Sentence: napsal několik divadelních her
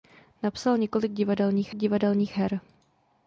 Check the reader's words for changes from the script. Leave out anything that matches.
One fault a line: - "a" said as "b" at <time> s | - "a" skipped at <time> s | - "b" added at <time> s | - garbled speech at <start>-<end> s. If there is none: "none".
- "divadelních" added at 1.7 s